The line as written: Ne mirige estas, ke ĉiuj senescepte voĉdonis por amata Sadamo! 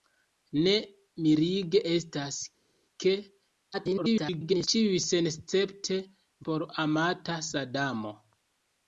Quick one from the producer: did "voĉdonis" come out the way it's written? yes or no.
no